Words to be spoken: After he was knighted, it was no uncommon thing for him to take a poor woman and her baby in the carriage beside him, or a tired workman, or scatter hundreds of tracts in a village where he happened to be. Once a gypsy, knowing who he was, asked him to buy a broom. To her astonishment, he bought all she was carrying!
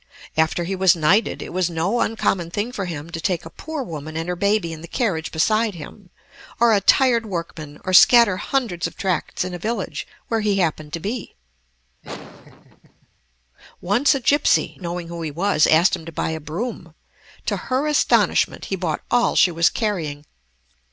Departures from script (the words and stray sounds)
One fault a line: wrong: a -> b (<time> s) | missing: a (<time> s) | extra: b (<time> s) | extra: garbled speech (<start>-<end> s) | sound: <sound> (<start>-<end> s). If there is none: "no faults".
sound: laugh (12.0-13.1 s)